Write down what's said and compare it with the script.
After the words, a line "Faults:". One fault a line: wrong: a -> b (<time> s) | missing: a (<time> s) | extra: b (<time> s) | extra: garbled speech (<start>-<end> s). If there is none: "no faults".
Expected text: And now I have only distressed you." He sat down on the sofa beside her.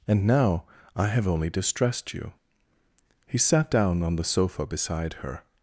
And now I have only distressed you." He sat down on the sofa beside her.
Faults:
no faults